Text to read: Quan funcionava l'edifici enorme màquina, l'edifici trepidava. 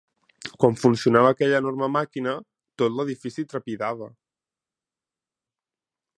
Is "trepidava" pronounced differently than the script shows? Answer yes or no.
no